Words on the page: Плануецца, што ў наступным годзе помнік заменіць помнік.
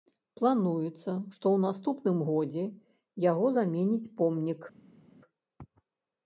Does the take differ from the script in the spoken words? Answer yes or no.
yes